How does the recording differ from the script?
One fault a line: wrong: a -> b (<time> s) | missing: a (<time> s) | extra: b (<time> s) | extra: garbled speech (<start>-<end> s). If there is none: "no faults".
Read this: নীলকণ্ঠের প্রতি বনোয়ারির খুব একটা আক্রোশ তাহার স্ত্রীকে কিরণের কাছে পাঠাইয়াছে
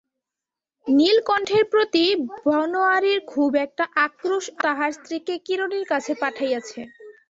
no faults